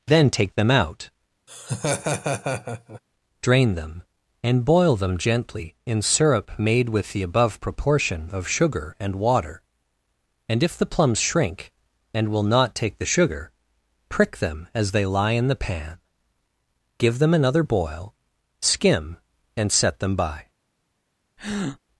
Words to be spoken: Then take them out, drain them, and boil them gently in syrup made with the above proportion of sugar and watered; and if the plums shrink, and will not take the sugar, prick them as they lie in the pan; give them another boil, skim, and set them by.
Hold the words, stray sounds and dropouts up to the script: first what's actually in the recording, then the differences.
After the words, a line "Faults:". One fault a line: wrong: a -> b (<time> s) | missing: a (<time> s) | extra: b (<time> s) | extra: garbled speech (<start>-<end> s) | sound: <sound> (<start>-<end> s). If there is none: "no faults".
Then take them out, drain them, and boil them gently in syrup made with the above proportion of sugar and water; and if the plums shrink, and will not take the sugar, prick them as they lie in the pan; give them another boil, skim, and set them by.
Faults:
sound: laugh (1.5-3.0 s)
wrong: watered -> water (9.2 s)
sound: breath (21.4-21.8 s)